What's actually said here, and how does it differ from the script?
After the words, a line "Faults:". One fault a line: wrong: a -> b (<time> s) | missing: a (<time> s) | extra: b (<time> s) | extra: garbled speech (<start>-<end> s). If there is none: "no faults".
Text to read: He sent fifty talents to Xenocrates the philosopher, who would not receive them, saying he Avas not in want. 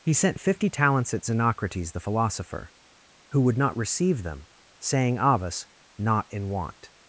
He sent fifty talents at Xenocrates the philosopher, who would not receive them, saying Avas not in want.
Faults:
wrong: to -> at (1.1 s)
missing: he (5.2 s)